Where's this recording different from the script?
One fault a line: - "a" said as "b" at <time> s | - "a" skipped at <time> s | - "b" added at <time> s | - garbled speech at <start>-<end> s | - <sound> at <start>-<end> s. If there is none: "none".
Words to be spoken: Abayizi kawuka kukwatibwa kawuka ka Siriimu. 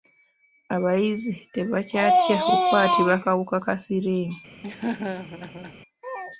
- "kawuka" said as "tebakyatya" at 1.5 s
- laugh at 4.6-5.8 s